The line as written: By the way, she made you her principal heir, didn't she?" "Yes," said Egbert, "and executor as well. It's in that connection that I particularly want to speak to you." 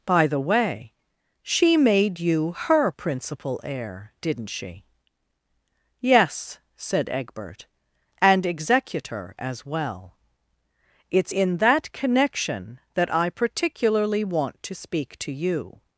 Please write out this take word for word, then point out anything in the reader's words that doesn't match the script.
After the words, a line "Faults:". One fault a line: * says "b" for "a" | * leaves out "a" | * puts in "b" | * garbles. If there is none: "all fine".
By the way, she made you her principal heir, didn't she?" "Yes," said Egbert, "and executor as well. It's in that connection that I particularly want to speak to you."
Faults:
all fine